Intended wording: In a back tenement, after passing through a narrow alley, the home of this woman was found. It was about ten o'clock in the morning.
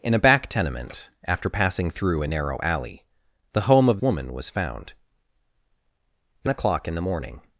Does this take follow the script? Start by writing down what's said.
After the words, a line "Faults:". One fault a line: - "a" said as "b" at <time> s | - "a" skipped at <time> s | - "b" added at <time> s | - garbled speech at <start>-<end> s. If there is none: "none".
In a back tenement, after passing through a narrow alley, the home of woman was found. It o'clock in the morning.
Faults:
- "this" skipped at 4.0 s
- "was about ten" skipped at 6.5 s